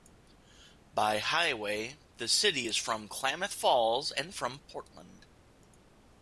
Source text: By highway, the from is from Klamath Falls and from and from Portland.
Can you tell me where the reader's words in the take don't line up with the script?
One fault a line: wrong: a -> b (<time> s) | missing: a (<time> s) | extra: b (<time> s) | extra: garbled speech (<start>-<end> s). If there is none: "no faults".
wrong: from -> city (2.3 s)
missing: and from (4.6 s)